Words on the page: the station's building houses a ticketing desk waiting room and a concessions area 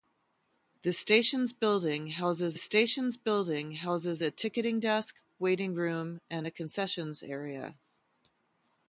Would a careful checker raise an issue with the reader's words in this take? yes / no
yes